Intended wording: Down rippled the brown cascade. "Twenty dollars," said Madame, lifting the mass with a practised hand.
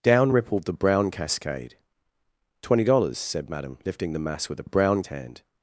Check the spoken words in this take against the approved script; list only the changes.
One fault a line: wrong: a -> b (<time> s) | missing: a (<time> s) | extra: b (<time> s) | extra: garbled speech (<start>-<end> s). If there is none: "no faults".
wrong: practised -> brown (4.6 s)